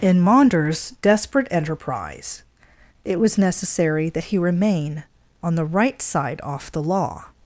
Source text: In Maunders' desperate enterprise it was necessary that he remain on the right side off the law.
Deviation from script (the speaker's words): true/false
false